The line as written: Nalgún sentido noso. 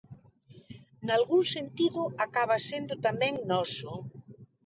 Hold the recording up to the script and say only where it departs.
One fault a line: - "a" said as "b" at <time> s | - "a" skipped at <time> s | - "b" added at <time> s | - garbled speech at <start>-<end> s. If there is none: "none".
- "acaba sendo tamén" added at 2.2 s